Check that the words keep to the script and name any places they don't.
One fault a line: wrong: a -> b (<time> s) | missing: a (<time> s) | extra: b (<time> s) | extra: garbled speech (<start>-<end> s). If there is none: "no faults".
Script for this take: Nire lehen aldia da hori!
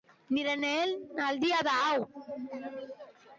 wrong: hori -> hau (1.9 s)